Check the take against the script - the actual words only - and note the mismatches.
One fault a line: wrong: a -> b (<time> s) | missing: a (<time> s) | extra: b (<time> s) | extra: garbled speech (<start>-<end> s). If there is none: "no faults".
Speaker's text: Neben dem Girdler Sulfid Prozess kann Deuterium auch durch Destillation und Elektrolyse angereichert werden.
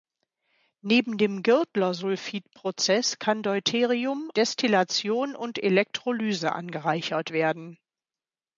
missing: auch durch (4.3 s)